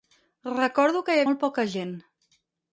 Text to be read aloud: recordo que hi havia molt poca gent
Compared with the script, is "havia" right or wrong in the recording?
wrong